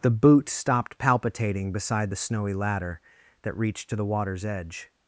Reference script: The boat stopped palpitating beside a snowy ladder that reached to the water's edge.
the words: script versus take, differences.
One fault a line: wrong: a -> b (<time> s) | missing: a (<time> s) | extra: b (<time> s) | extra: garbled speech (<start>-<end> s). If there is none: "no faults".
wrong: boat -> boot (0.1 s)
wrong: a -> the (2.1 s)